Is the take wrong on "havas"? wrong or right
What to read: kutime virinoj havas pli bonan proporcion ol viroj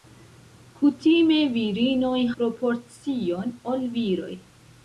wrong